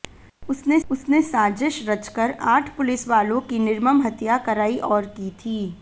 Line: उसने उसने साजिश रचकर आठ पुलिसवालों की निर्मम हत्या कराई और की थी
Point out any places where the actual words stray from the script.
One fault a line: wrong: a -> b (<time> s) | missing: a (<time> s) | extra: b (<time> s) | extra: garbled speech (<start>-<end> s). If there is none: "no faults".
no faults